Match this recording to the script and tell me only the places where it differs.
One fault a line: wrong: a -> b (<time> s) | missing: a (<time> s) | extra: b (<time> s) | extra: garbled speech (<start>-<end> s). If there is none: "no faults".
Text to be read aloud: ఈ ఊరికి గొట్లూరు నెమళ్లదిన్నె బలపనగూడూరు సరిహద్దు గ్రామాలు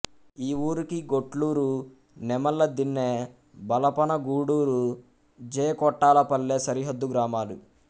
extra: జె కొట్టాలపల్లె (5.4 s)